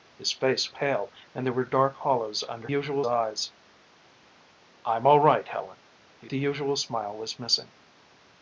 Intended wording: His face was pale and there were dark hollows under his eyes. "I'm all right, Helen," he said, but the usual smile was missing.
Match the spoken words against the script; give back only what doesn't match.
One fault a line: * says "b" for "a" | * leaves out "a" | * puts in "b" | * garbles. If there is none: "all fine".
* leaves out "was"
* says "usual" for "his"
* leaves out "said but"